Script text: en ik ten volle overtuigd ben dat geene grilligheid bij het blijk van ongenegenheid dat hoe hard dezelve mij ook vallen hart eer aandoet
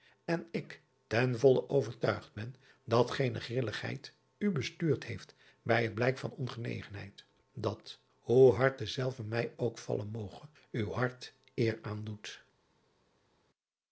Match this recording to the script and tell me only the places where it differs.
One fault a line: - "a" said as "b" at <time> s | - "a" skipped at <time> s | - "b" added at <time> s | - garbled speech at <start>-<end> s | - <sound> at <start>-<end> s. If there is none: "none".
- "u bestuurd heeft" added at 4.4 s
- "moge uw" added at 10.1 s